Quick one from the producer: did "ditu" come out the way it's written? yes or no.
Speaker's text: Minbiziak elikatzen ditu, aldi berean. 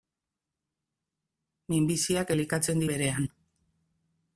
no